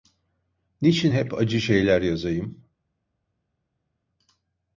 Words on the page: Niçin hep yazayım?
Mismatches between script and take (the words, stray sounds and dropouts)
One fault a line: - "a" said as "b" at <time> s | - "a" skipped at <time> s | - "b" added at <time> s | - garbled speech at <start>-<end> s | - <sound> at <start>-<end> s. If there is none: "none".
- "acı şeyler" added at 1.3 s